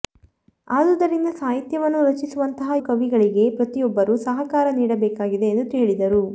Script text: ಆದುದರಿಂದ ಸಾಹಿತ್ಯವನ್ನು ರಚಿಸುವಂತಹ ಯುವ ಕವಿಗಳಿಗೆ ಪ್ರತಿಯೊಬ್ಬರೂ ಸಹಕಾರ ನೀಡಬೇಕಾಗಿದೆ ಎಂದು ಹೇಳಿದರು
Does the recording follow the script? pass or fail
fail